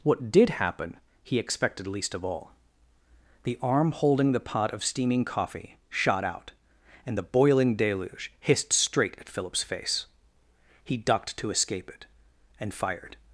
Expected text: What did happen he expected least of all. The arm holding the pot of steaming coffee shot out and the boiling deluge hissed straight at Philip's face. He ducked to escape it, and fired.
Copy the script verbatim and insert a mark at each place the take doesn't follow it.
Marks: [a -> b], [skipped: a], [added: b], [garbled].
What did happen he expected least of all. The arm holding the pot of steaming coffee shot out and the boiling deluge hissed straight at Philip's face. He ducked to escape it, and fired.